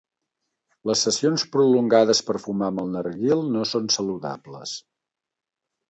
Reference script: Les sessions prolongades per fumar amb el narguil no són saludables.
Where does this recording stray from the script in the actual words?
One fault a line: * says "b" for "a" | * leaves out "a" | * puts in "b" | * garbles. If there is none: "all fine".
all fine